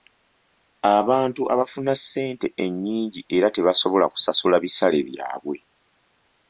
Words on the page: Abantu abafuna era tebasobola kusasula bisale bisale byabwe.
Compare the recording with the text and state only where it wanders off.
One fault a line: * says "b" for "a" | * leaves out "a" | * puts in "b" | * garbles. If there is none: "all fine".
* puts in "ssente ennyingi"
* leaves out "bisale"